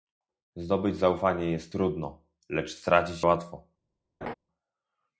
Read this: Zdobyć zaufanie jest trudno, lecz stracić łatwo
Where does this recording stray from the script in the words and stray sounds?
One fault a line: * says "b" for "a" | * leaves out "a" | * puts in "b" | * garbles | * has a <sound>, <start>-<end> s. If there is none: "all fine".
* has a laugh, 4.2-4.3 s